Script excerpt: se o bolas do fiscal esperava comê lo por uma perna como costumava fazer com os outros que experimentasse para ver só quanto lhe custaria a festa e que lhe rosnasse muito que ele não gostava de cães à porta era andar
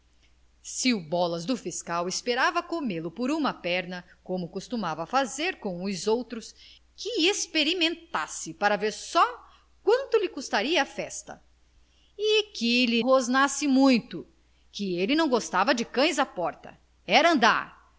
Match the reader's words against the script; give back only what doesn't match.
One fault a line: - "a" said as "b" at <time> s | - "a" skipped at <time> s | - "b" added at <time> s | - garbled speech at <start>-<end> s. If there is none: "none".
none